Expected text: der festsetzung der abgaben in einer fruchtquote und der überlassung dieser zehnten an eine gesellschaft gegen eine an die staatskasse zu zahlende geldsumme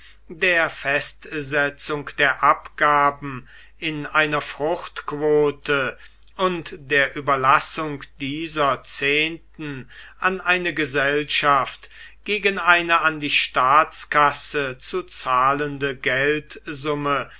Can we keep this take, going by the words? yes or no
yes